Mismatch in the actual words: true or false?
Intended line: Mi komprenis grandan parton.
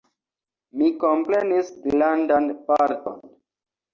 false